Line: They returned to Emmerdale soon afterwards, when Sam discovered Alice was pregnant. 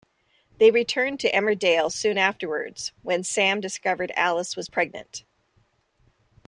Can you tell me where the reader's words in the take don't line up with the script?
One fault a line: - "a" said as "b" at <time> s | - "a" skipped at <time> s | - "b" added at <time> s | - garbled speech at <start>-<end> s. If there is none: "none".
none